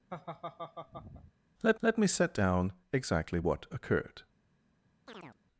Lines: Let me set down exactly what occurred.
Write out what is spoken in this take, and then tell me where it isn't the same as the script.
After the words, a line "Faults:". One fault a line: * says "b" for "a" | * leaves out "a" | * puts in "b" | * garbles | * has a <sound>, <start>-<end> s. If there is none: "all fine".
Let let me set down exactly what occurred.
Faults:
* has a laugh, 0.1-1.3 s
* puts in "let"
* has a chirp, 5.1-5.4 s